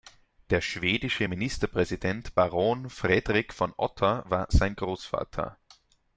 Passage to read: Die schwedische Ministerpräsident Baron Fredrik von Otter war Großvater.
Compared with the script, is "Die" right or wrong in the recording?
wrong